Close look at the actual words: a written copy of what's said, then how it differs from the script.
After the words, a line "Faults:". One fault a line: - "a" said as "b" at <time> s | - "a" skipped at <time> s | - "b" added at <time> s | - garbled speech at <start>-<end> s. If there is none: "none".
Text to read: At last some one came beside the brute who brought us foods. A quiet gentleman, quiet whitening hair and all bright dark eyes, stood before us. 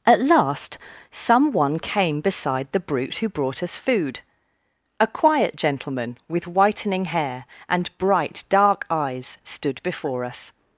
At last some one came beside the brute who brought us food. A quiet gentleman, with whitening hair and bright dark eyes, stood before us.
Faults:
- "foods" said as "food" at 3.8 s
- "quiet" said as "with" at 6.3 s
- "all" skipped at 7.9 s